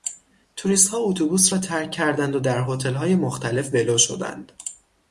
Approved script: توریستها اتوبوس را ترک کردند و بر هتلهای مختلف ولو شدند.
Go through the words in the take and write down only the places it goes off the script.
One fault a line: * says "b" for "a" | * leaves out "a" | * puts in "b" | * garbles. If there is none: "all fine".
* says "در" for "بر"